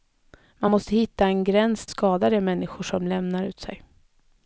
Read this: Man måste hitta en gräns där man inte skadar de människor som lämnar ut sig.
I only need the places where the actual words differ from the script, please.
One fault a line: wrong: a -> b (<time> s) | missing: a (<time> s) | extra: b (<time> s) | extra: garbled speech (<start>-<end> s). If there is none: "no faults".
missing: där man inte (1.9 s)